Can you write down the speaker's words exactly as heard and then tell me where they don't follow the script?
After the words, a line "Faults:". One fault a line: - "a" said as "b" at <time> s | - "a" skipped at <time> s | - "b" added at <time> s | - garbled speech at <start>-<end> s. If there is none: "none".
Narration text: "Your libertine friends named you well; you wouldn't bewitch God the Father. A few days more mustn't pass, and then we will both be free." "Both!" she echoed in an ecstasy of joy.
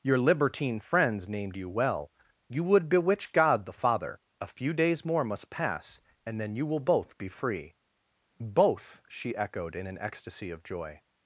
"Your libertine friends named you well; you would bewitch God the Father. A few days more must pass, and then you will both be free." "Both!" she echoed in an ecstasy of joy.
Faults:
- "wouldn't" said as "would" at 2.6 s
- "mustn't" said as "must" at 5.2 s
- "we" said as "you" at 6.5 s